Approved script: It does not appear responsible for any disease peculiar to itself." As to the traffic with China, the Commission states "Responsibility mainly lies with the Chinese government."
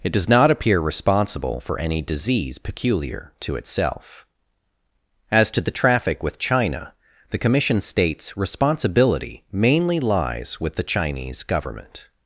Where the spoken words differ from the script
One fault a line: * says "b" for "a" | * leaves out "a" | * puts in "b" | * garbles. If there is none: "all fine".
all fine